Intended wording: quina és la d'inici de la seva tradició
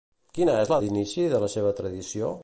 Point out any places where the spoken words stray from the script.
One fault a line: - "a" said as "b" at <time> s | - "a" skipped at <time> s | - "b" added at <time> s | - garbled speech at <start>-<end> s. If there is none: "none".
none